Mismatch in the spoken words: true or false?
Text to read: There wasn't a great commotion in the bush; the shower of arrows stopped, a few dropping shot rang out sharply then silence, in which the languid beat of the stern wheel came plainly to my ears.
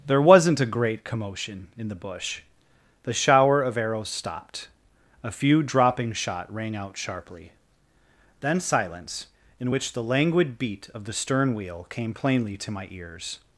false